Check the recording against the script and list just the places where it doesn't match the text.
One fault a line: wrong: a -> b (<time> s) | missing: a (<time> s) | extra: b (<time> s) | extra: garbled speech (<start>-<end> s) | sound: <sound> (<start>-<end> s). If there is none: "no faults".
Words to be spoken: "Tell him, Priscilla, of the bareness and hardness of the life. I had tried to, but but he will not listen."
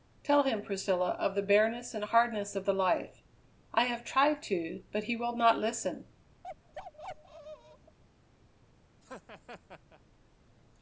wrong: had -> have (3.9 s)
missing: but (5.1 s)
sound: bark (6.4-8.0 s)
sound: laugh (9.0-10.0 s)